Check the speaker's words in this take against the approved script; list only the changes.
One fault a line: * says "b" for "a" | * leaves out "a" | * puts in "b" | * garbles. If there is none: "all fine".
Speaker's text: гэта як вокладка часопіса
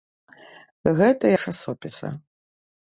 * leaves out "як вокладка"